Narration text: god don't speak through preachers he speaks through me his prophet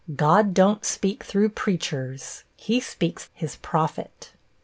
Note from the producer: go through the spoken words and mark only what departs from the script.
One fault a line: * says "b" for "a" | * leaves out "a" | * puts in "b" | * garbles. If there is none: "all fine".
* leaves out "through me"